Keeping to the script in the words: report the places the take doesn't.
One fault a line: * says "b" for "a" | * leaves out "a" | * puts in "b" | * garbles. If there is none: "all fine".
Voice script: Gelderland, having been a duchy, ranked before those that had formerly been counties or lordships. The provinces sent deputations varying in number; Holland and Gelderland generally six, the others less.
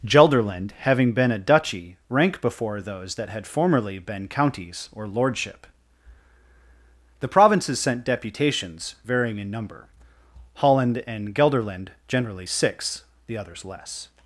* says "rank" for "ranked"
* says "lordship" for "lordships"